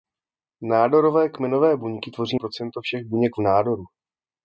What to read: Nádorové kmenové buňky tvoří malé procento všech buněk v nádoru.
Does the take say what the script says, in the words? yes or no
no